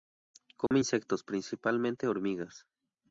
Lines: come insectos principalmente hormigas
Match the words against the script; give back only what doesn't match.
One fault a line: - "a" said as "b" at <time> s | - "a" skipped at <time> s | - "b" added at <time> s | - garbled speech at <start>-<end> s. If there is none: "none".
none